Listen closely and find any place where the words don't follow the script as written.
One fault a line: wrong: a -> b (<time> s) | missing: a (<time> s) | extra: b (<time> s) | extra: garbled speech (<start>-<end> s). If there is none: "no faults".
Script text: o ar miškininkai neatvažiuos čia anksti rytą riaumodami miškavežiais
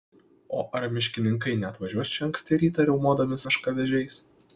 no faults